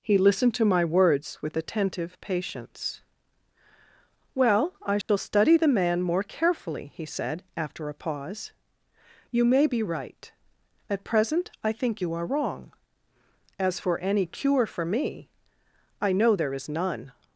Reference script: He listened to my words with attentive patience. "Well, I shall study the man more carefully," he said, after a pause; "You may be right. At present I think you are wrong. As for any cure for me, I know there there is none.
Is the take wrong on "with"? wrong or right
right